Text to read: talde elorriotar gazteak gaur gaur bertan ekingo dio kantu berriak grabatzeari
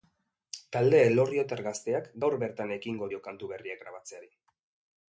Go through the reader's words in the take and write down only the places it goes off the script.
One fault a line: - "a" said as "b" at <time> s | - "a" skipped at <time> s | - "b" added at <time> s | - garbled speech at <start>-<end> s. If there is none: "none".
- "gaur" skipped at 2.4 s